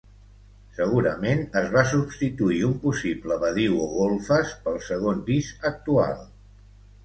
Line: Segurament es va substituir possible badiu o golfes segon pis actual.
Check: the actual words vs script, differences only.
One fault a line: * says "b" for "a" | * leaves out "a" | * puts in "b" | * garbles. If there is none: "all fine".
* puts in "un"
* puts in "pel"